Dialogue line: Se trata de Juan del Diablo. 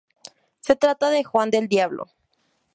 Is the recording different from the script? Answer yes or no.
no